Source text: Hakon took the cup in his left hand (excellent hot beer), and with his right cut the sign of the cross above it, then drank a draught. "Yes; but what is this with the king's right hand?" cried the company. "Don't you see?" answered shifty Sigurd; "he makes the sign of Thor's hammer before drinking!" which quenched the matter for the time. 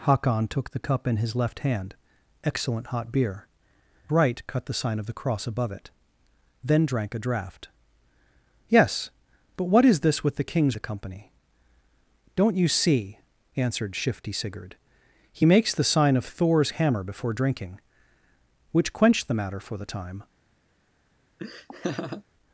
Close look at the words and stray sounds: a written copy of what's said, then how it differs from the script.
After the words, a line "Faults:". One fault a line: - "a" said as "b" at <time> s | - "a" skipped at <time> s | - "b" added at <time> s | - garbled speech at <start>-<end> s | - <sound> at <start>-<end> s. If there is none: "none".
Hakon took the cup in his left hand (excellent hot beer), right cut the sign of the cross above it, then drank a draught. "Yes; but what is this with the king's the company. "Don't you see?" answered shifty Sigurd; "he makes the sign of Thor's hammer before drinking!" which quenched the matter for the time.
Faults:
- "and with his" skipped at 3.5 s
- "right hand cried" skipped at 10.8 s
- laugh at 21.4-22.2 s